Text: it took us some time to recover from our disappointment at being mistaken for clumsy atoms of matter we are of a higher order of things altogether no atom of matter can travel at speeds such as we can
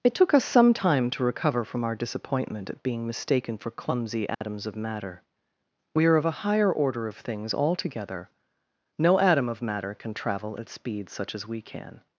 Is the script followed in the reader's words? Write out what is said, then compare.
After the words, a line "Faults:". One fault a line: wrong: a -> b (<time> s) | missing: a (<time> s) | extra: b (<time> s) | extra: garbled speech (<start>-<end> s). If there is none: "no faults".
it took us some time to recover from our disappointment at being mistaken for clumsy atoms of matter we are of a higher order of things altogether no atom of matter can travel at speeds such as we can
Faults:
no faults